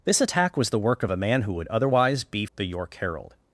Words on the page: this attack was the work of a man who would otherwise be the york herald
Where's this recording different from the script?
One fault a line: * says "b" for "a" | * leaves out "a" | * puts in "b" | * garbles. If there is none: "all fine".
all fine